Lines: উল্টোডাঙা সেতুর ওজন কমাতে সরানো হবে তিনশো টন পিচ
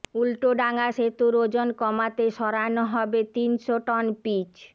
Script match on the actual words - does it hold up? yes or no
yes